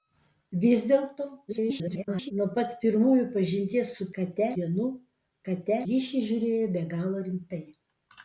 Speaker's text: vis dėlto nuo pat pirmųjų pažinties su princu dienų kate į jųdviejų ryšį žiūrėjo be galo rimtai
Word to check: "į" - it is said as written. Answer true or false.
false